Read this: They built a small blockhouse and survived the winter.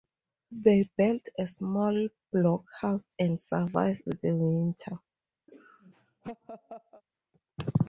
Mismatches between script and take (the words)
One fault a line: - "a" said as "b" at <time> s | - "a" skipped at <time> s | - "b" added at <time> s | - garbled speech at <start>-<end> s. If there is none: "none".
none